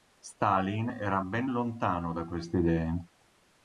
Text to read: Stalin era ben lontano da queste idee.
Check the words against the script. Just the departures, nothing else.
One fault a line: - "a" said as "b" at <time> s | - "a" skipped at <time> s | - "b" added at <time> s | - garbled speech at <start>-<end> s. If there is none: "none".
none